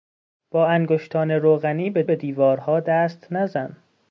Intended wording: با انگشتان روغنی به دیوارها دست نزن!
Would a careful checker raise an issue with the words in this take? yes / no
yes